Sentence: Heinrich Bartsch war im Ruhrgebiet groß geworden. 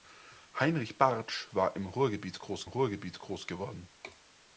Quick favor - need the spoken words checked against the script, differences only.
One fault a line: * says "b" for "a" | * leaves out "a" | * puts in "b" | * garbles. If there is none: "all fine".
* puts in "Ruhrgebiet groß"